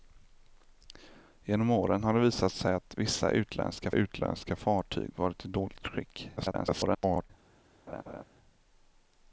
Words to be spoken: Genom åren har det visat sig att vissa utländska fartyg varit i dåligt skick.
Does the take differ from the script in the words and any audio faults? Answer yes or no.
yes